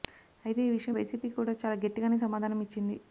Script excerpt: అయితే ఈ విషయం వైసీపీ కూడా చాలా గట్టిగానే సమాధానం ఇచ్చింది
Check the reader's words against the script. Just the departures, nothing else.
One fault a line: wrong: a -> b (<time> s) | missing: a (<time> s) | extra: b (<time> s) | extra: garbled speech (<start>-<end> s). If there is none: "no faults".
no faults